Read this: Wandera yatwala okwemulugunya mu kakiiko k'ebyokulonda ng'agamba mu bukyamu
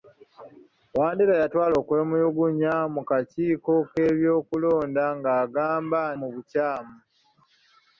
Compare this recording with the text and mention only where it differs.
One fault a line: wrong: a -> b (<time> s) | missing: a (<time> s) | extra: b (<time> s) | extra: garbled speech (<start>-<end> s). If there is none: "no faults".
no faults